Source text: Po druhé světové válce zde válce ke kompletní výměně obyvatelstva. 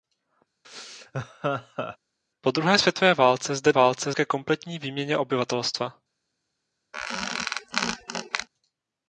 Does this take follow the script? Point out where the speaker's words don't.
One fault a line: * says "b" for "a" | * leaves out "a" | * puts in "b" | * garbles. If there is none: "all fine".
all fine